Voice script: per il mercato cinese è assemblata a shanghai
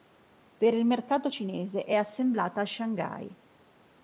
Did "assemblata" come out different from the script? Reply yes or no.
no